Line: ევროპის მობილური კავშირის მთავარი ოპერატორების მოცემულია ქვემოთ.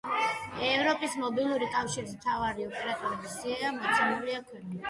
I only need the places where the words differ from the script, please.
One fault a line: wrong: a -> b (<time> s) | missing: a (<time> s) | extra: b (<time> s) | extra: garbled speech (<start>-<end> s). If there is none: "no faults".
extra: სია (3.4 s)